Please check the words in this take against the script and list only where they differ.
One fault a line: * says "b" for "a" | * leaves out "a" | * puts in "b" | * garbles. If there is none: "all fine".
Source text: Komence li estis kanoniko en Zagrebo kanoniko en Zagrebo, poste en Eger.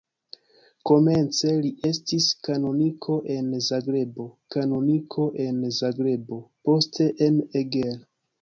all fine